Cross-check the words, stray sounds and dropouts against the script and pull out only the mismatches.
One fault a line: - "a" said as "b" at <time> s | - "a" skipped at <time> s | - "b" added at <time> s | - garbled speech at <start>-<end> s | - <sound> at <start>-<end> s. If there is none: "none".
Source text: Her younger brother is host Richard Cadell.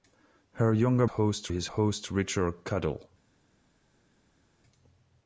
- "brother" said as "host" at 1.1 s